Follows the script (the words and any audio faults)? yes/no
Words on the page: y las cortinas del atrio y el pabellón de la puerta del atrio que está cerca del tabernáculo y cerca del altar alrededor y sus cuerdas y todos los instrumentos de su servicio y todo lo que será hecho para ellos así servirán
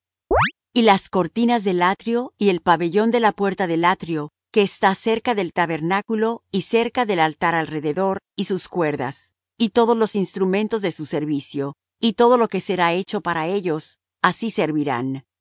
no